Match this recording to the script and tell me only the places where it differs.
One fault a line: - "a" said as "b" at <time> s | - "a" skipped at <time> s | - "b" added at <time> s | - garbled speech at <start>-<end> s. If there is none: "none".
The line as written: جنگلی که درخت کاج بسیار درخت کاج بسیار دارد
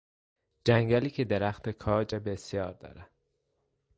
- "درخت کاج بسیار" skipped at 2.7 s